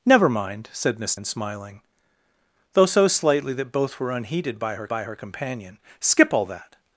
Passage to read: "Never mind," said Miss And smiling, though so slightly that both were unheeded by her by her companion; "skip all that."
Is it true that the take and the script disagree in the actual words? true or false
false